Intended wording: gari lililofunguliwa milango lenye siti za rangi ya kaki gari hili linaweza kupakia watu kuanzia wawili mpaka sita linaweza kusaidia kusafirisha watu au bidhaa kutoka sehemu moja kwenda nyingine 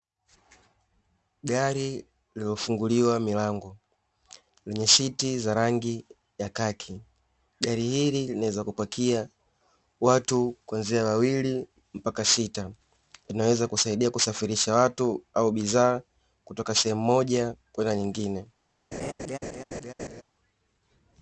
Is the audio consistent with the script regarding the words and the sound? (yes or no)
no